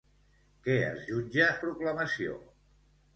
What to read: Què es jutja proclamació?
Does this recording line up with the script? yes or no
yes